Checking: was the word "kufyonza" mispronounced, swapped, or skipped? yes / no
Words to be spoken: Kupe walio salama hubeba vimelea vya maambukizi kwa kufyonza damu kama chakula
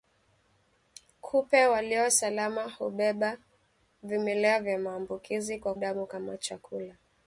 yes